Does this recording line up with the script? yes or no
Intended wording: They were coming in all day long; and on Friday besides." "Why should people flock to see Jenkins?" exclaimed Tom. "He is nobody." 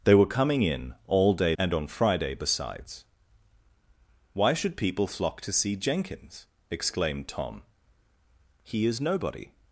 no